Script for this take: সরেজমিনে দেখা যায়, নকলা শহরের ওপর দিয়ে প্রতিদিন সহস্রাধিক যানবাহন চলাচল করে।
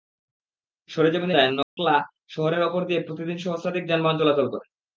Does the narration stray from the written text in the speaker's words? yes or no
yes